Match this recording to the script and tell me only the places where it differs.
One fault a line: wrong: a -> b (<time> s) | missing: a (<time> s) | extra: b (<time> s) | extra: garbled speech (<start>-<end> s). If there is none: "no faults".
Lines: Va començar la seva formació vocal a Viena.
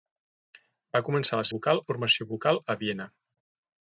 wrong: seva -> vocal (1.5 s)